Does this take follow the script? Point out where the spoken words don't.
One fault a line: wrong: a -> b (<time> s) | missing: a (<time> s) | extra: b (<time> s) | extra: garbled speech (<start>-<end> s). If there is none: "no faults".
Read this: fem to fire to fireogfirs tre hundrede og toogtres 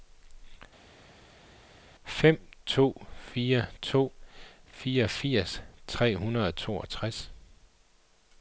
no faults